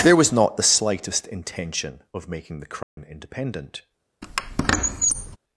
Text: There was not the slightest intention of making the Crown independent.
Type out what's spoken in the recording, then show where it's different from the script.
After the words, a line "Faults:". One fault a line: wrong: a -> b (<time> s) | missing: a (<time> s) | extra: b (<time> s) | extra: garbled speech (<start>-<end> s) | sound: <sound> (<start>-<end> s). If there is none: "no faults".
There was not the slightest intention of making the Crown independent.
Faults:
sound: dropout (2.8-3.0 s)
sound: squeak (4.2-5.4 s)